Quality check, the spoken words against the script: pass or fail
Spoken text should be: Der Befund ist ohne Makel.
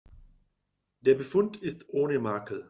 pass